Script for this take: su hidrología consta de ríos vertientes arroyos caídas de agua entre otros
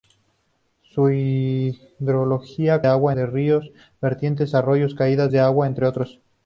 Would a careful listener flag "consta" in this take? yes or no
yes